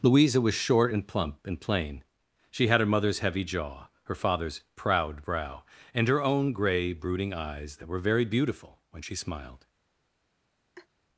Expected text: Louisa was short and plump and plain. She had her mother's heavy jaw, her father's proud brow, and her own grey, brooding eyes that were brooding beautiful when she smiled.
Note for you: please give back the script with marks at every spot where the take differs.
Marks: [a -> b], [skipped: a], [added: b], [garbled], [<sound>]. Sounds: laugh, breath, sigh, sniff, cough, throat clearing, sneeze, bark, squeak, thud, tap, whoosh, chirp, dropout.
Louisa was short and plump and plain. She had her mother's heavy jaw, her father's proud brow, and her own grey, brooding eyes that were [brooding -> very] beautiful when she smiled. [laugh]